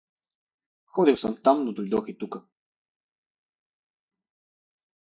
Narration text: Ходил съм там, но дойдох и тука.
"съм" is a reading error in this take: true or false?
false